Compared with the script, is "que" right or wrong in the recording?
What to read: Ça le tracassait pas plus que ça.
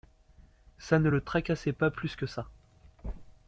right